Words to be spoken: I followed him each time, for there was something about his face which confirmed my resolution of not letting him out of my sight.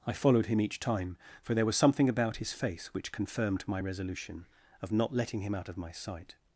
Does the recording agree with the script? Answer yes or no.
yes